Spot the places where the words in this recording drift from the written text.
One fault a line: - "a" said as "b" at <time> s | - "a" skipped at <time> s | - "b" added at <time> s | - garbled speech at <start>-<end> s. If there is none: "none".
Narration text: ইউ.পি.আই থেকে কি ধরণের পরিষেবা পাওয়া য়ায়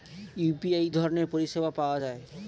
- "থেকে কি" skipped at 0.9 s